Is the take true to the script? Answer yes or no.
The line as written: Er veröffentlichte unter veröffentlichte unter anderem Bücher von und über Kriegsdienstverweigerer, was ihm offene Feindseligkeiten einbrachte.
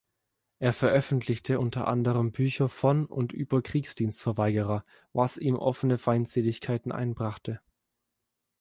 no